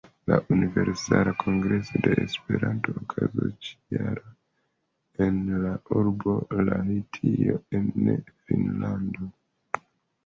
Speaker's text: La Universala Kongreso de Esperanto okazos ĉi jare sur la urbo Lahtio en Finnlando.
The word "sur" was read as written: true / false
false